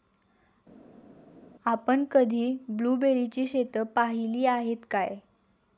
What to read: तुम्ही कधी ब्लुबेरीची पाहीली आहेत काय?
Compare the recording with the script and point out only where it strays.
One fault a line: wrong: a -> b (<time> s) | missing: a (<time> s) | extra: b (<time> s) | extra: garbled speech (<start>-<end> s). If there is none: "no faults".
wrong: तुम्ही -> आपण (1.7 s)
extra: शेतं (3.5 s)